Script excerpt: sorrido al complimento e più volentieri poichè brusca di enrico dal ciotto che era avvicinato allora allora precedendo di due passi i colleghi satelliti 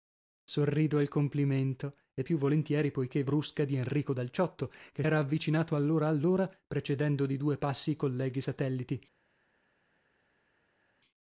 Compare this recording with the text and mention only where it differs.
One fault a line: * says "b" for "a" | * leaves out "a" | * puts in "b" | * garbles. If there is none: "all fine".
all fine